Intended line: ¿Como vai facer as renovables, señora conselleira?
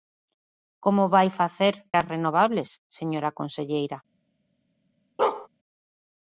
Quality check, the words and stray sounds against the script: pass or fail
fail